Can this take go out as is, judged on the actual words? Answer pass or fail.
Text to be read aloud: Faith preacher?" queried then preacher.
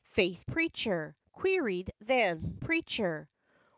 pass